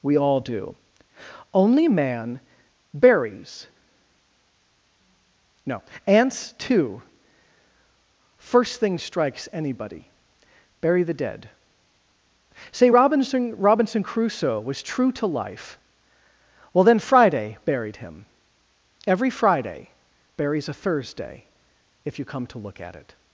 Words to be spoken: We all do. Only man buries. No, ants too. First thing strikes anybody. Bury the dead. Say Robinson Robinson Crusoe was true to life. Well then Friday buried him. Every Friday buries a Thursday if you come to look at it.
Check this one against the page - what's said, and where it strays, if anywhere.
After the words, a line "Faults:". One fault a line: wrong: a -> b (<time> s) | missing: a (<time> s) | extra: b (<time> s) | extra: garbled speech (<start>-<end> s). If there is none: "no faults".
We all do. Only man buries. No, ants too. First thing strikes anybody. Bury the dead. Say Robinson Robinson Crusoe was true to life. Well then Friday buried him. Every Friday buries a Thursday if you come to look at it.
Faults:
no faults